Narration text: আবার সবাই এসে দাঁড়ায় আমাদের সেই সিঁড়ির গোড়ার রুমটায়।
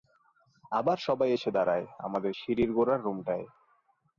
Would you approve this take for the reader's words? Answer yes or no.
no